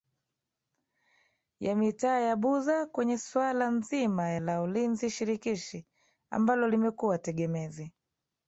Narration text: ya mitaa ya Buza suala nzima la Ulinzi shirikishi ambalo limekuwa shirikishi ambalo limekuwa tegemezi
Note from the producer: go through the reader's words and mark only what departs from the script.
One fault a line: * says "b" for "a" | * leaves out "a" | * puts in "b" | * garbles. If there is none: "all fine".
* puts in "kwenye"
* leaves out "shirikishi ambalo limekuwa"